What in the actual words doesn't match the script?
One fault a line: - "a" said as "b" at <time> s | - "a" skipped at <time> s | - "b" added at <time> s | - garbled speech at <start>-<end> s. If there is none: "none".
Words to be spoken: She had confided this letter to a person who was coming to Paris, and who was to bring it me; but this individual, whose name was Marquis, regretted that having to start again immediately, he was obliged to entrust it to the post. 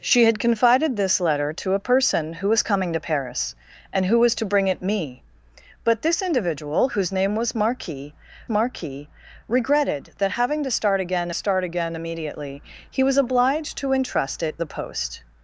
- "Marquis" added at 8.5 s
- "start again" added at 11.3 s
- "to" skipped at 14.6 s